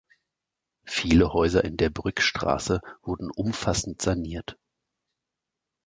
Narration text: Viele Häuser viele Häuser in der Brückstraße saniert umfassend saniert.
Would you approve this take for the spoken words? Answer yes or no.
no